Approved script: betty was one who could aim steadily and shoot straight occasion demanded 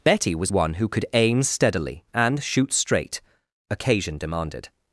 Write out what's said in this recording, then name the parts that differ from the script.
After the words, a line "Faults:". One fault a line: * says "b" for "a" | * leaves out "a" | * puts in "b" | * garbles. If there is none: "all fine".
betty was one who could aim steadily and shoot straight occasion demanded
Faults:
all fine